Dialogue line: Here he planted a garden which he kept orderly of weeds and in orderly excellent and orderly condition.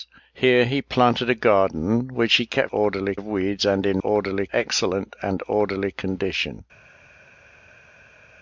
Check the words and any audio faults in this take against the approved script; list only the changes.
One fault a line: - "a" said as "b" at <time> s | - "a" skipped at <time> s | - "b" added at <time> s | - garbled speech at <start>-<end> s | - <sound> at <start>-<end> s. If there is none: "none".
none